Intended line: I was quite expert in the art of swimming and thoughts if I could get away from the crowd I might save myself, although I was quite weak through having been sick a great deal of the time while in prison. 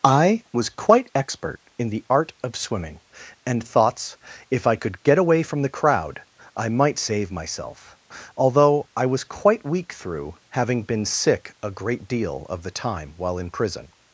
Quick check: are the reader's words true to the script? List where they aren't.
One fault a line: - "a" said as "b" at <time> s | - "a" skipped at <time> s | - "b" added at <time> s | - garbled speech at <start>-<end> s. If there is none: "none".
none